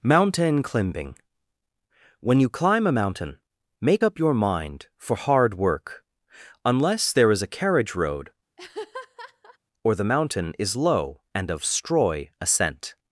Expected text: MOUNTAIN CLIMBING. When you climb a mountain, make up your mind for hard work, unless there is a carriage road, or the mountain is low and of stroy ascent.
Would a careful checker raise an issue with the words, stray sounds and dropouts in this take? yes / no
yes